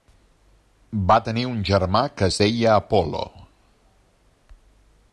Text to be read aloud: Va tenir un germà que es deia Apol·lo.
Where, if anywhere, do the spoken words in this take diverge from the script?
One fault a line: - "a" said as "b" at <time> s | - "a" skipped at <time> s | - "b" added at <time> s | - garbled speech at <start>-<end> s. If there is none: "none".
none